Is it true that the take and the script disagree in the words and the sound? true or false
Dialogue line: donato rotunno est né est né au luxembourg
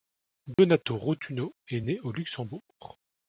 true